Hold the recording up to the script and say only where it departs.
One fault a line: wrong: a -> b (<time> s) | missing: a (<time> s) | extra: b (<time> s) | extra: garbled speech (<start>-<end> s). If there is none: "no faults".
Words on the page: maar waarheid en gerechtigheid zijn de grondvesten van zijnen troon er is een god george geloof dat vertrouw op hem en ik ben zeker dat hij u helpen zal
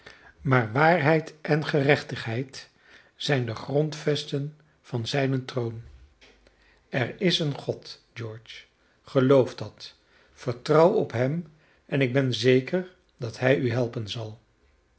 no faults